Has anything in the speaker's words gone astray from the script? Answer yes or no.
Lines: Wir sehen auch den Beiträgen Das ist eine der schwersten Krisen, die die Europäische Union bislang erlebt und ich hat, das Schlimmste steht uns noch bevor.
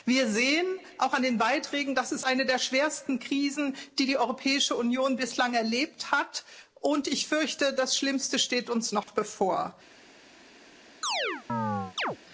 yes